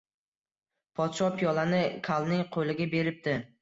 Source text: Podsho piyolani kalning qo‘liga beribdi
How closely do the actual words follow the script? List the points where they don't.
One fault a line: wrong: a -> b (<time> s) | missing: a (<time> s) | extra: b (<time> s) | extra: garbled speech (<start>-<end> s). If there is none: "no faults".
no faults